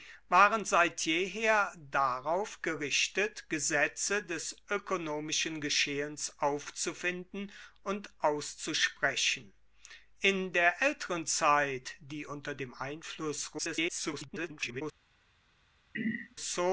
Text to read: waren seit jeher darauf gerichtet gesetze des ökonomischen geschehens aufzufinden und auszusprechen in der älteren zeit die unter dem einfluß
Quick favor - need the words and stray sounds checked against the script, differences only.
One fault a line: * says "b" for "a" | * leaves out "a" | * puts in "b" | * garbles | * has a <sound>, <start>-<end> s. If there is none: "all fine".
* garbles
* has a throat clearing, 15.9-16.4 s